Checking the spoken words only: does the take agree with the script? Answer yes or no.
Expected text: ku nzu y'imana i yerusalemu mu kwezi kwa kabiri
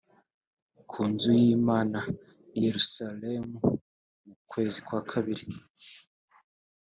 yes